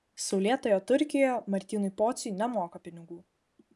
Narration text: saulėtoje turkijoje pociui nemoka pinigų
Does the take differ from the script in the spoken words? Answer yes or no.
yes